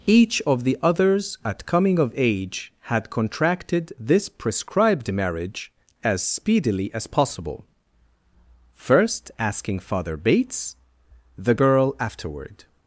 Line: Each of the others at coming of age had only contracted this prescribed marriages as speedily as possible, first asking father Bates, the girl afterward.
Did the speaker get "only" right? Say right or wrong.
wrong